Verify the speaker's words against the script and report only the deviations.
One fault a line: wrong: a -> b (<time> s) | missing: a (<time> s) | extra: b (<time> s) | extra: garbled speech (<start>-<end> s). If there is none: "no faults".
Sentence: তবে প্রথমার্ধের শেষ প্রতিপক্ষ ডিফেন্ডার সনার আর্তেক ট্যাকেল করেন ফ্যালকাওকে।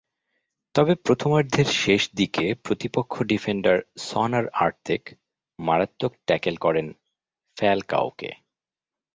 extra: দিকে (2.1 s)
extra: মারাত্মক (5.6 s)